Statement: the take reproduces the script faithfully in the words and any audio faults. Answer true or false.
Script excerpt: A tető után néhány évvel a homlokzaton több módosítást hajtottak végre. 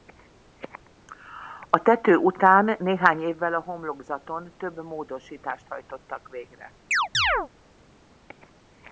false